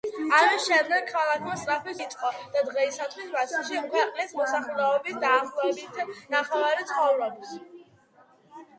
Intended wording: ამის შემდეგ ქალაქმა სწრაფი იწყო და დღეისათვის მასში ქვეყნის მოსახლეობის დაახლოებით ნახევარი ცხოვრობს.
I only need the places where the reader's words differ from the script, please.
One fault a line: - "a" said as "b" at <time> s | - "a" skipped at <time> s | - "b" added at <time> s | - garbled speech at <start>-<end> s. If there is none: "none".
none